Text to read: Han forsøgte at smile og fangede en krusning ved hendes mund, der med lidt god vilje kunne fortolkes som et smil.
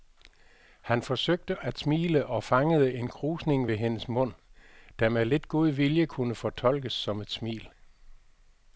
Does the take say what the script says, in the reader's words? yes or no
yes